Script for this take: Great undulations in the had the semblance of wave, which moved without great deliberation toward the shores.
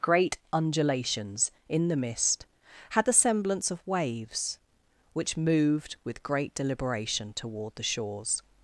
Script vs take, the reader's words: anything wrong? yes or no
yes